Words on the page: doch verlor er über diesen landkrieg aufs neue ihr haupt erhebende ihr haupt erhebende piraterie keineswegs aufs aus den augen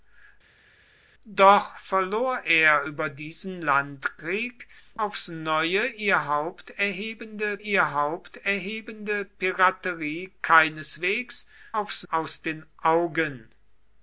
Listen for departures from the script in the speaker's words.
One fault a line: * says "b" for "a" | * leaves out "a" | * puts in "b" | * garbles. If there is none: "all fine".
all fine